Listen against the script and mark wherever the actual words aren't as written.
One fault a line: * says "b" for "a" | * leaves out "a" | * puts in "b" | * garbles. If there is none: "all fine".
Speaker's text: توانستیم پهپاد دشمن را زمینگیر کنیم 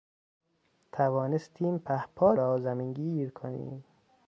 * leaves out "دشمن"